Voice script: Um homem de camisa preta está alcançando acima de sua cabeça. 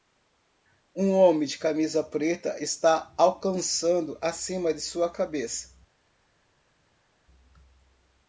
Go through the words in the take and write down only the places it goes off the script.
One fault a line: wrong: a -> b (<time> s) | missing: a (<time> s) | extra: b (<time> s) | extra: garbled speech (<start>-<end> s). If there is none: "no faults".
no faults